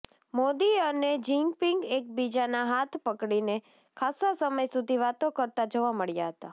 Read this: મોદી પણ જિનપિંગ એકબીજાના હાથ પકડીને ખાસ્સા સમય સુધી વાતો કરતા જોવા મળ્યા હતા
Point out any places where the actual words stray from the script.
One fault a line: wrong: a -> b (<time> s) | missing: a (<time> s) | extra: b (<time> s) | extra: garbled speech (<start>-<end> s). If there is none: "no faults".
wrong: પણ -> અને (0.8 s)